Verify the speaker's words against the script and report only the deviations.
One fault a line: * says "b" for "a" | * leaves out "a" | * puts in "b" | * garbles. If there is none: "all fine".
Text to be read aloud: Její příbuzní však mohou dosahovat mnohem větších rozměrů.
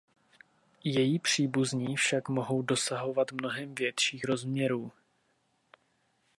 all fine